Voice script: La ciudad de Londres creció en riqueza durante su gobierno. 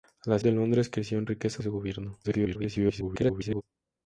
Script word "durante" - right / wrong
wrong